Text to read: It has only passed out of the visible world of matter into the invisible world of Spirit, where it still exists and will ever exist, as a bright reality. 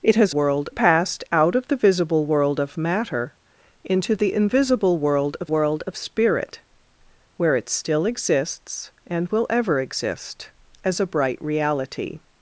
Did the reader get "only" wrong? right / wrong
wrong